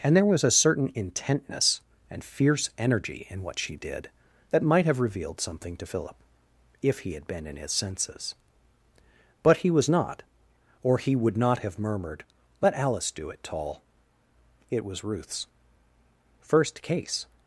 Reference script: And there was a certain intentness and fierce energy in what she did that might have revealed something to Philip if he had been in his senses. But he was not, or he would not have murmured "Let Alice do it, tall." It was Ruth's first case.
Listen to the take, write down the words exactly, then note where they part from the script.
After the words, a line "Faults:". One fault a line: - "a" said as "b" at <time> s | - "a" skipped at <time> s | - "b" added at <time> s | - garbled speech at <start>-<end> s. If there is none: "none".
And there was a certain intentness and fierce energy in what she did that might have revealed something to Philip if he had been in his senses. But he was not, or he would not have murmured "Let Alice do it, tall." It was Ruth's first case.
Faults:
none